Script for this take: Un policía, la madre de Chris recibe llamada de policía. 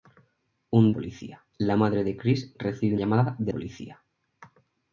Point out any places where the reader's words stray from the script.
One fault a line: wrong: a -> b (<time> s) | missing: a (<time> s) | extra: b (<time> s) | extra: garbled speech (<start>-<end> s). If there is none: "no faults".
no faults